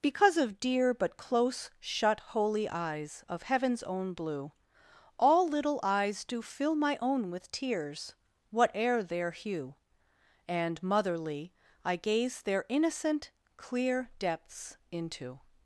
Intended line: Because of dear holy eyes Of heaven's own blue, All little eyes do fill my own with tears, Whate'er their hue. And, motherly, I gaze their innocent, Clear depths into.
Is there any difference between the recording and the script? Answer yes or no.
yes